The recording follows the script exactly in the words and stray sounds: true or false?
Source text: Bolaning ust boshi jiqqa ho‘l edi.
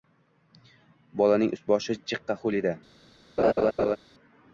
false